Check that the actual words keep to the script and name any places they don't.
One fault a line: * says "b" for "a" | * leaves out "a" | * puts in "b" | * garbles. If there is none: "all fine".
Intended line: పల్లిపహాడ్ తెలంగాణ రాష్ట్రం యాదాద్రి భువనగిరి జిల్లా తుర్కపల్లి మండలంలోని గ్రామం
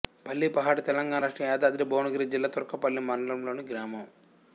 all fine